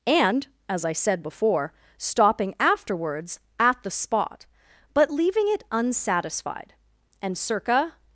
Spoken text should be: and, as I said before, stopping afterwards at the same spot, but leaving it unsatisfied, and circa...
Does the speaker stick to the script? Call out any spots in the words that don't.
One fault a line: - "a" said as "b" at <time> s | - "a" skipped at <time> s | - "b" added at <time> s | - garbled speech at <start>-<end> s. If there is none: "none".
- "same" skipped at 3.9 s